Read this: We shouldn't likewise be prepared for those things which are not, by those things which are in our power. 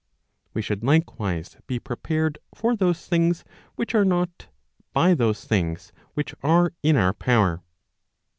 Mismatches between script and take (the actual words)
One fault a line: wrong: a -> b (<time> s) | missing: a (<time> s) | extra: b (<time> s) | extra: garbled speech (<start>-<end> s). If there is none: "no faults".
wrong: shouldn't -> should (0.6 s)